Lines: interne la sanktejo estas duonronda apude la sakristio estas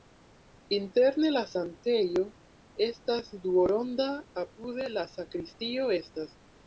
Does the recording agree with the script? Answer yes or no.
yes